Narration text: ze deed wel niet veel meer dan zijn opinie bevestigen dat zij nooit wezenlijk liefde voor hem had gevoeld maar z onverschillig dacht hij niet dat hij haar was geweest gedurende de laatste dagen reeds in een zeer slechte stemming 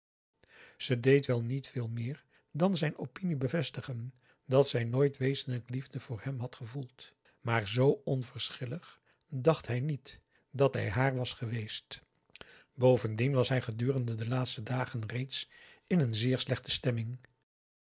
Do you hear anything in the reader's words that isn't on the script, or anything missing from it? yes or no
yes